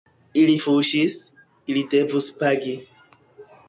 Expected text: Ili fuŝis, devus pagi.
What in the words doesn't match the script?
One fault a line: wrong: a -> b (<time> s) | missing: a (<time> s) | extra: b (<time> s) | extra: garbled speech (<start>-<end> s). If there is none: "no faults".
extra: ili (1.7 s)